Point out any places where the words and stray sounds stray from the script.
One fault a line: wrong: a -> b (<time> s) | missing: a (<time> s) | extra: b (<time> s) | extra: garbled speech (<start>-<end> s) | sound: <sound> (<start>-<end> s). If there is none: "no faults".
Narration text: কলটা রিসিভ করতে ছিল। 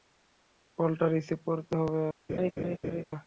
wrong: ছিল -> হবে (1.8 s)
sound: laugh (2.3-3.0 s)